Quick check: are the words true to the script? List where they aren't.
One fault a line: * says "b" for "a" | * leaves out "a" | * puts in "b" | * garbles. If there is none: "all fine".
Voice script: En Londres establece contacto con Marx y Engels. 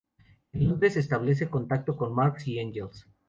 all fine